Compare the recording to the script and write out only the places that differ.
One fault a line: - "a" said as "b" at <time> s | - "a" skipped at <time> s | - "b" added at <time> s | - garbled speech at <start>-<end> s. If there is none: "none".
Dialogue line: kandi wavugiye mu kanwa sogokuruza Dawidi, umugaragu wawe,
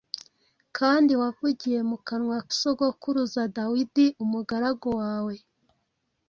none